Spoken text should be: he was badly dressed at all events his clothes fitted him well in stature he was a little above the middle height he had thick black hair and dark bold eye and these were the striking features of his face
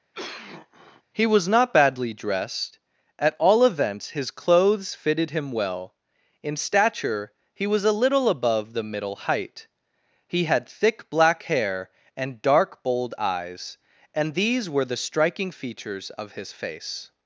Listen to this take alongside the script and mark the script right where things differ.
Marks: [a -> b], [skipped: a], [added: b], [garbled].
he was [added: not] badly dressed at all events his clothes fitted him well in stature he was a little above the middle height he had thick black hair and dark bold [eye -> eyes] and these were the striking features of his face